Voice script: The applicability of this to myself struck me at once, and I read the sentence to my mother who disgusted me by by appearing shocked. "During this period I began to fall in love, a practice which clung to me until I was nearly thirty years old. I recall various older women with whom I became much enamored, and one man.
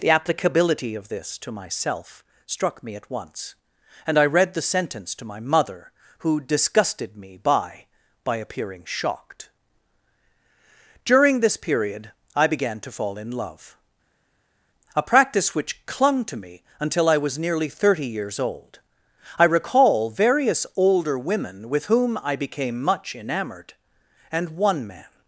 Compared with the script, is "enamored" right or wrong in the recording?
right